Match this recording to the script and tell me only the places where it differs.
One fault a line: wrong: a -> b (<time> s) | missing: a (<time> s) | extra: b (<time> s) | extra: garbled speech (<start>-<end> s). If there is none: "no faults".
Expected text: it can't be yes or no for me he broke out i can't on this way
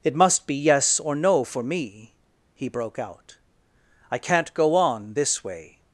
wrong: can't -> must (0.1 s)
extra: go (4.5 s)